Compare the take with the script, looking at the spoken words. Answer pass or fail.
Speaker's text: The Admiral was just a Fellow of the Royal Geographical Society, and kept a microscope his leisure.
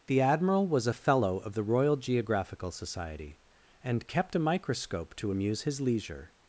fail